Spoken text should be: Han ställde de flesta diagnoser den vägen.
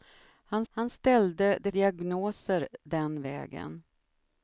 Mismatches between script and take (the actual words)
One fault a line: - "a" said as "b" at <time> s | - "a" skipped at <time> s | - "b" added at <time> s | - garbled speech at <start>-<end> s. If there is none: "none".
- "han" added at 0.7 s
- "flesta" skipped at 1.7 s